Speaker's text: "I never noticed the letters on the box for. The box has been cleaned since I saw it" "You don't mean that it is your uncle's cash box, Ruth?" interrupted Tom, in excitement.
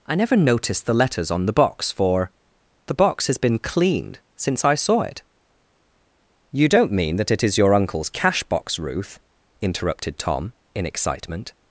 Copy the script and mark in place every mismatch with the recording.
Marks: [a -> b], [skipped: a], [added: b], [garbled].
"I never noticed the letters on the box for. The box has been cleaned since I saw it" "You don't mean that it is your uncle's cash box, Ruth?" interrupted Tom, in excitement.